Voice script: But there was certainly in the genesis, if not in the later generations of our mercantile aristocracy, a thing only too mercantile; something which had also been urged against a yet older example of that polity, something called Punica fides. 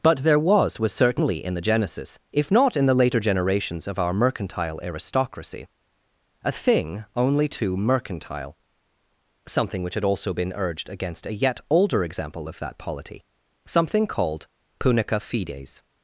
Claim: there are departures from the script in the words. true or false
true